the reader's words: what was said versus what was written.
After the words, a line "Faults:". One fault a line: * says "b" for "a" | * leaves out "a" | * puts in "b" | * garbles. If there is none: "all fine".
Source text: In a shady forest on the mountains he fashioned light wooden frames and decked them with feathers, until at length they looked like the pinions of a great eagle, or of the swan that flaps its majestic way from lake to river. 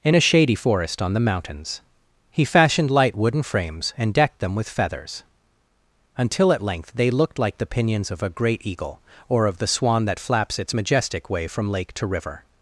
In a shady forest on the mountains he fashioned light wooden frames and decked them with feathers, until at length they looked like the pinions of a great eagle, or of the swan that flaps its majestic way from lake to river.
Faults:
all fine